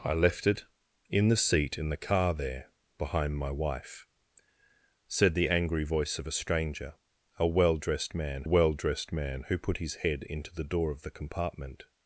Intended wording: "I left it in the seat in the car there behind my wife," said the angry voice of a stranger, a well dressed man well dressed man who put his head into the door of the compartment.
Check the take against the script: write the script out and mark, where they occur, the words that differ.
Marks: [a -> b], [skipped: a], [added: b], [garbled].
"I left it in the seat in the car there behind my wife," said the angry voice of a stranger, a well dressed man well dressed man who put his head into the door of the compartment.